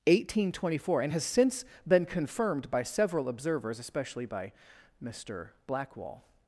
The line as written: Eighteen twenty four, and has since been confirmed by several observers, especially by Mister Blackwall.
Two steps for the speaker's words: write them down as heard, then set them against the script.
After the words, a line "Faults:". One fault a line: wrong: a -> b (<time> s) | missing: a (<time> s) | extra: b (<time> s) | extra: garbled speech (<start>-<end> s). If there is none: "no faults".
Eighteen twenty four, and has since been confirmed by several observers, especially by Mister Blackwall.
Faults:
no faults